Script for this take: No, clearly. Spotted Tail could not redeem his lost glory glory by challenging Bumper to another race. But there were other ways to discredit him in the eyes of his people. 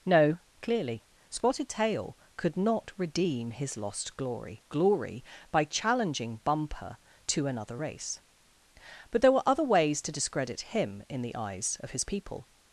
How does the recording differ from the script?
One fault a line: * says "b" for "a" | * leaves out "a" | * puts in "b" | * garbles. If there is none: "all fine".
all fine